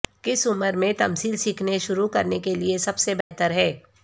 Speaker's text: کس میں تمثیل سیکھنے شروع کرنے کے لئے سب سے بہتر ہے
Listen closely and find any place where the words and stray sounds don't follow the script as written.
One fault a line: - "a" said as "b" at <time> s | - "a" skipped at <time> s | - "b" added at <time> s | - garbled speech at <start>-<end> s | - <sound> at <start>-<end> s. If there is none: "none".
- "عمر" added at 0.5 s
- dropout at 3.2-3.3 s